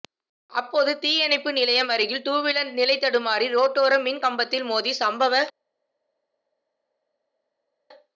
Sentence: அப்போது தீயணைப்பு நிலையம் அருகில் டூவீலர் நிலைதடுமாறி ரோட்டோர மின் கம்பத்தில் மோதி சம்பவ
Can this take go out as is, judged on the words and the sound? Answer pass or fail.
pass